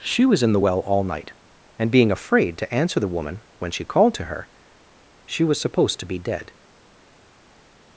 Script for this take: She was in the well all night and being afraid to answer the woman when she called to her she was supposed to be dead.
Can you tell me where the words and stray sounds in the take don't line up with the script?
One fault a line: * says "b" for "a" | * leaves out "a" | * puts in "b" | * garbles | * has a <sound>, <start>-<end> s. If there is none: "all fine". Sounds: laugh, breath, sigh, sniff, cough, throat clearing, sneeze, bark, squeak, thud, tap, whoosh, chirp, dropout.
all fine